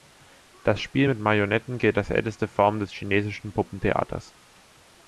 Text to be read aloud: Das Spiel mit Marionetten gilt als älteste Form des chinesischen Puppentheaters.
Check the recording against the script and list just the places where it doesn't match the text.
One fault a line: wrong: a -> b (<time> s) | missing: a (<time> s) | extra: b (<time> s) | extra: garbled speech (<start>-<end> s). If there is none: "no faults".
no faults